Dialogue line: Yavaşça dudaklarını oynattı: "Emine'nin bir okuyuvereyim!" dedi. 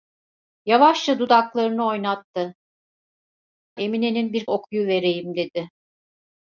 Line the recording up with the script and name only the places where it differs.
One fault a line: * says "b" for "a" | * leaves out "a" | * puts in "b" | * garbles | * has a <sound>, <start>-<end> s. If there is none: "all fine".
all fine